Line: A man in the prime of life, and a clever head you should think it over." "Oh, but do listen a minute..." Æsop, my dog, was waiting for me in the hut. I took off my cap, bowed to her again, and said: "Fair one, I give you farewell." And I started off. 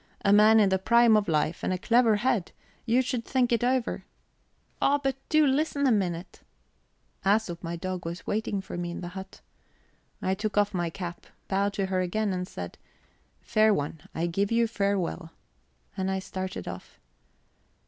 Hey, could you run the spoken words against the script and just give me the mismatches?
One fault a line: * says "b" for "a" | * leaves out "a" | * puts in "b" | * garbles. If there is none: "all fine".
all fine